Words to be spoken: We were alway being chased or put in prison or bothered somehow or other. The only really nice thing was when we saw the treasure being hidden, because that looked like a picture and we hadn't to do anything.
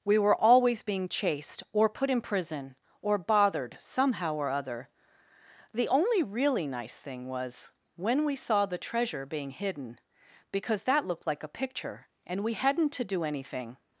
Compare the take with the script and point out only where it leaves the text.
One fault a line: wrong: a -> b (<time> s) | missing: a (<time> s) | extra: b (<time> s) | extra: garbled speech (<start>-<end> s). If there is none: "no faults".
wrong: alway -> always (0.3 s)